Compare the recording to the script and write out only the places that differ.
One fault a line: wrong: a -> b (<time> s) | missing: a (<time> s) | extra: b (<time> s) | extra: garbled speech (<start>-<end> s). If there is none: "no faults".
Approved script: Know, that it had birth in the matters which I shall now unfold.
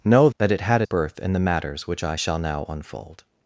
no faults